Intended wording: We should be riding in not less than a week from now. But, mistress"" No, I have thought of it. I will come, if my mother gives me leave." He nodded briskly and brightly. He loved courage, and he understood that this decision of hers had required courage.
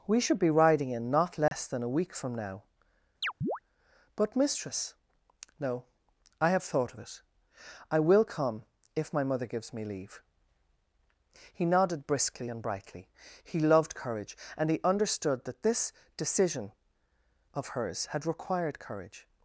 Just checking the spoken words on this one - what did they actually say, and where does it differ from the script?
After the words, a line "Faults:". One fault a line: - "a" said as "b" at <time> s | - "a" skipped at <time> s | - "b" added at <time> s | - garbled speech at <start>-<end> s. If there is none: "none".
We should be riding in not less than a week from now. But, mistress"" No, I have thought of it. I will come, if my mother gives me leave." He nodded briskly and brightly. He loved courage, and he understood that this decision of hers had required courage.
Faults:
none